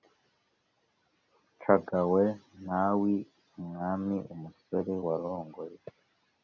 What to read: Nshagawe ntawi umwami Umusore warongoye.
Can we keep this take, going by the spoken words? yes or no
yes